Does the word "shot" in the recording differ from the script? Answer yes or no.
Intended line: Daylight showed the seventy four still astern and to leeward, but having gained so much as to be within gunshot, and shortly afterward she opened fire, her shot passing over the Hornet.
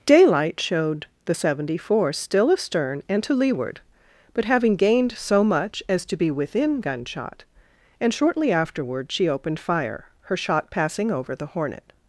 no